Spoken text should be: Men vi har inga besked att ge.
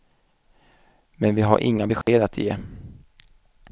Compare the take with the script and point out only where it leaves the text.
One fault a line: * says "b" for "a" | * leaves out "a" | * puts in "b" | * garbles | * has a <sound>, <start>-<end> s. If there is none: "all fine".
* has a dropout, 2.0-2.1 s